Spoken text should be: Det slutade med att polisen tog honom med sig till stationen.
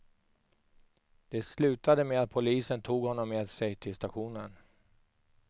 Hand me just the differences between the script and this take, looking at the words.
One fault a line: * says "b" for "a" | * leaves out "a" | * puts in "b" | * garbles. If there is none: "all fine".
all fine